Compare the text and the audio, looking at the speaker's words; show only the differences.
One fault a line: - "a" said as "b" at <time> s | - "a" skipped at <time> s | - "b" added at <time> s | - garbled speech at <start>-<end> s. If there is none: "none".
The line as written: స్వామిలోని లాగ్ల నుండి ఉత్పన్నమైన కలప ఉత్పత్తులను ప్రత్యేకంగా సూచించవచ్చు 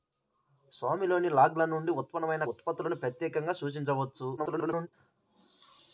- "కలప" skipped at 2.5 s
- garbled speech at 4.4-4.9 s